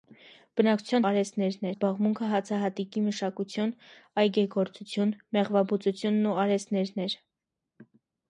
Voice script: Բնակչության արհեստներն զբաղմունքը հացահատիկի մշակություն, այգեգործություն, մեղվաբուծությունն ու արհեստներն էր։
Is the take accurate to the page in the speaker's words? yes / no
yes